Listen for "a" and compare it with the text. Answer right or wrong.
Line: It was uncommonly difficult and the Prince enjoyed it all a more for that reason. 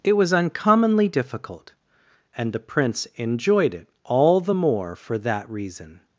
wrong